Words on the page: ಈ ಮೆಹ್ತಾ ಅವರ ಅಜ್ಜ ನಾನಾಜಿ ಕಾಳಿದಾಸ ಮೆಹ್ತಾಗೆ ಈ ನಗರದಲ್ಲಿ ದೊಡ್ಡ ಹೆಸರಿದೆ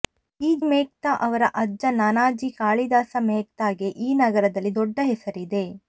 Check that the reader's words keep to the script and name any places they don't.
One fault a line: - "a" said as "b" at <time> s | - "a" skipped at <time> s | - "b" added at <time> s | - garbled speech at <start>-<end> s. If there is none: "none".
none